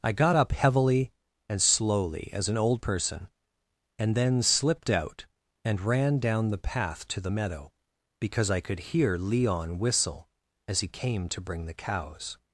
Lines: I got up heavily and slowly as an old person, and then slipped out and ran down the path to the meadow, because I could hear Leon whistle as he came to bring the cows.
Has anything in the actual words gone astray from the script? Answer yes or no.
no